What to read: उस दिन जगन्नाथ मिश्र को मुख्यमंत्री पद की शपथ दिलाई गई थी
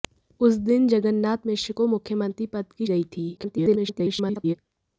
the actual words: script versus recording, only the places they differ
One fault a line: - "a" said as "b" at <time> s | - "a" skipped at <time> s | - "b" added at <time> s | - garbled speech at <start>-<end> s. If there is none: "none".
- "शपथ दिलाई" skipped at 2.9 s
- garbled speech at 3.4-4.6 s